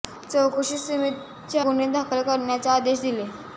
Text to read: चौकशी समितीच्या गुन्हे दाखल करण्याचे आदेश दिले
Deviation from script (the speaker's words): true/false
false